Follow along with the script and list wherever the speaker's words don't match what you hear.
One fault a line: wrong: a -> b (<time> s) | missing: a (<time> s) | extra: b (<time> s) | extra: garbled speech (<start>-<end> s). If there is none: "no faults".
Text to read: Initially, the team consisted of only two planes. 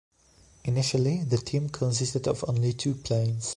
no faults